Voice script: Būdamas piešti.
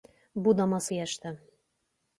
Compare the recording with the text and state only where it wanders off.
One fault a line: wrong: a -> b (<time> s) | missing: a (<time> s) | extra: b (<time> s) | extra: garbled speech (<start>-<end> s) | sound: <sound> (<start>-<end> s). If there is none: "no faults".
no faults